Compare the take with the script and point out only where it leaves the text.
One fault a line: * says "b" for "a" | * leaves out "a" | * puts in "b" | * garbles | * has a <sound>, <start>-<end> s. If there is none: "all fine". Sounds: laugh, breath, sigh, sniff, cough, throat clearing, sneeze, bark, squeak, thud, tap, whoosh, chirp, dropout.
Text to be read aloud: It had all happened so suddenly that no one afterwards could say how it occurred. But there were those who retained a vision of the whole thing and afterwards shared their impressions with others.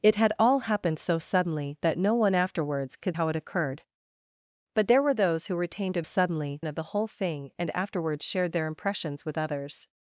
* leaves out "say"
* says "suddenly" for "vision"